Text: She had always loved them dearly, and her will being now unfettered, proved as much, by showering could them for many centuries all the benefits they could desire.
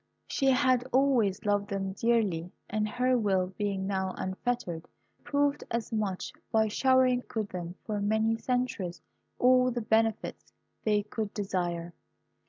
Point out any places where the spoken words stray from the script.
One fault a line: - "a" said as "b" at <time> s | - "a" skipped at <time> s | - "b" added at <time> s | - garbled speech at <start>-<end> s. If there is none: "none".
none